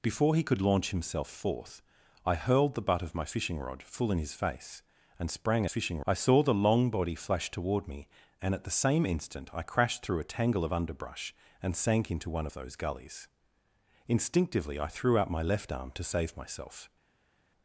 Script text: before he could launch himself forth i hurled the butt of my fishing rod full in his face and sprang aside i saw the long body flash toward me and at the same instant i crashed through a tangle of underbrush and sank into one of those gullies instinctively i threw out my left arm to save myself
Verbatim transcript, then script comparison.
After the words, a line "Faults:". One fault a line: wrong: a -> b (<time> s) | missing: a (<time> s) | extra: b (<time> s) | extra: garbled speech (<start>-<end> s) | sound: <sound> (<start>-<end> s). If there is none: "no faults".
before he could launch himself forth i hurled the butt of my fishing rod full in his face and sprang fishing i saw the long body flash toward me and at the same instant i crashed through a tangle of underbrush and sank into one of those gullies instinctively i threw out my left arm to save myself
Faults:
wrong: aside -> fishing (5.7 s)